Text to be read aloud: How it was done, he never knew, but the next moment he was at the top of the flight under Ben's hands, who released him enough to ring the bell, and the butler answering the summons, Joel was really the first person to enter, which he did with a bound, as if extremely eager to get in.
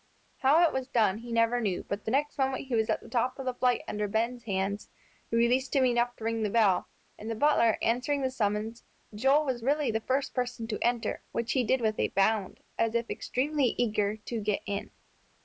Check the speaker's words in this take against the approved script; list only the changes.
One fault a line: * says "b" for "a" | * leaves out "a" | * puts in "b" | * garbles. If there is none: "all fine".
all fine